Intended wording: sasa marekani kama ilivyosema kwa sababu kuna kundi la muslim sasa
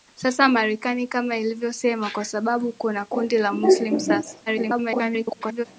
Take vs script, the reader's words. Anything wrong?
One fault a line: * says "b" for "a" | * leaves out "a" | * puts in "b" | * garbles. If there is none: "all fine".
* garbles